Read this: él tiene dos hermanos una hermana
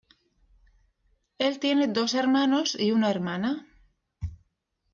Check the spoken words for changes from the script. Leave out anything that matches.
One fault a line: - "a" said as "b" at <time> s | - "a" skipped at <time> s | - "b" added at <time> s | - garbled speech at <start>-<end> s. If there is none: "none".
- "y" added at 2.8 s